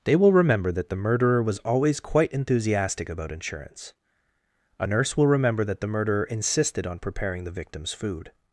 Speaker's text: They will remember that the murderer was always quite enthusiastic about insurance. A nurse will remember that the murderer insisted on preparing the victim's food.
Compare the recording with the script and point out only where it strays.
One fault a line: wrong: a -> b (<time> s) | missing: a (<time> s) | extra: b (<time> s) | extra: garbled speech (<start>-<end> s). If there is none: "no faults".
no faults